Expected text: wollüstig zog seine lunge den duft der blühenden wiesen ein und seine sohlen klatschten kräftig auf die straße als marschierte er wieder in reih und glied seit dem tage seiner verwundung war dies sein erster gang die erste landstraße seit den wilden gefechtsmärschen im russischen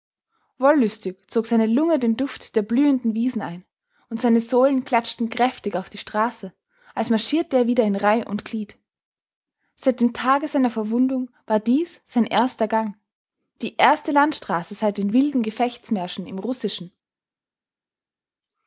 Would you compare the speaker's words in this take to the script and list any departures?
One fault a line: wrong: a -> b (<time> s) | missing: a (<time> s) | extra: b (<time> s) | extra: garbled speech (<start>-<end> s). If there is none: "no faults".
no faults